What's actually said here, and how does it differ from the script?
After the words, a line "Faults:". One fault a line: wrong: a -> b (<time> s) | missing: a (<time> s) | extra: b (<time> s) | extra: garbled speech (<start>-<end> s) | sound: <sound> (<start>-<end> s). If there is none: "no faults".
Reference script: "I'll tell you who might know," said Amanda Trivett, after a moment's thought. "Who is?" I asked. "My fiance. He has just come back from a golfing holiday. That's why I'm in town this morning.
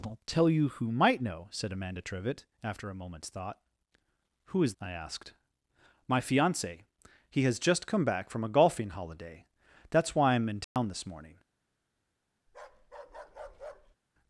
"I'll tell you who might know," said Amanda Trivett, after a moment's thought. "Who is?" I asked. "My fiance. He has just come back from a golfing holiday. That's why I'm in town this morning.
Faults:
sound: dropout (10.6-10.8 s)
sound: bark (12.5-14.0 s)